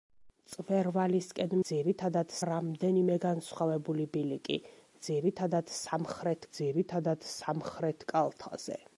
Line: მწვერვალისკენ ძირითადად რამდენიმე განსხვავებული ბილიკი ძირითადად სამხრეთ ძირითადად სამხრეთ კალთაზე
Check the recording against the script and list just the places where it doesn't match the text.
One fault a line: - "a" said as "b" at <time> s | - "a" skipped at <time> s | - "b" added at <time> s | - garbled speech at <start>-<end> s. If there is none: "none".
none